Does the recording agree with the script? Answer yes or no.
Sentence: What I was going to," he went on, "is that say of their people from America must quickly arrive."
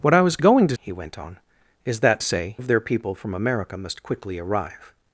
yes